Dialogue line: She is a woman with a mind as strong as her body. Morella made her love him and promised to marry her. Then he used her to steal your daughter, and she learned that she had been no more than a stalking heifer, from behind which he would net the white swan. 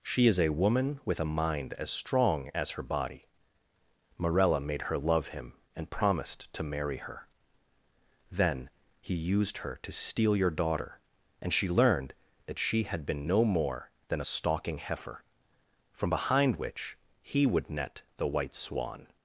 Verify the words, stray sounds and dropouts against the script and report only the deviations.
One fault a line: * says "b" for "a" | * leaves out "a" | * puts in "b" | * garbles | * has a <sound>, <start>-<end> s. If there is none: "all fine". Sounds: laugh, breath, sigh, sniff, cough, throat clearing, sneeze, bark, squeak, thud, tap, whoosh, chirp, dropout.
all fine